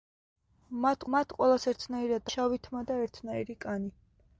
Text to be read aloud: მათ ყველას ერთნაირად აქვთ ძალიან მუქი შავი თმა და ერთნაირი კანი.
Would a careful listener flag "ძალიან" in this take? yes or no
yes